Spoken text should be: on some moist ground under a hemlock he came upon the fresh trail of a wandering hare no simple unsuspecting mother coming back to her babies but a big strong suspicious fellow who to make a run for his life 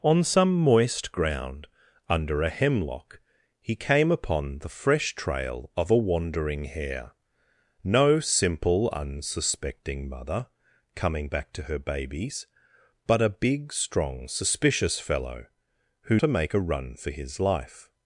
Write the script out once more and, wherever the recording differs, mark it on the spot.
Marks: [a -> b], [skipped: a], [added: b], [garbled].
on some moist ground under a hemlock he came upon the fresh trail of a wandering hare no simple unsuspecting mother coming back to her babies but a big strong suspicious fellow who to make a run for his life